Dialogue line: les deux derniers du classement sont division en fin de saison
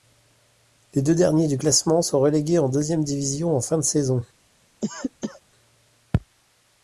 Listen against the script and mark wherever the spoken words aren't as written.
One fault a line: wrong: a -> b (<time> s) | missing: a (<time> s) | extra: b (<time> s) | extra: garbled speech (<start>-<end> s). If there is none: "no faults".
extra: relégués en deuxième (2.2 s)